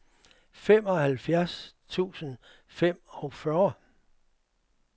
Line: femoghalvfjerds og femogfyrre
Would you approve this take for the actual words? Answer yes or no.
no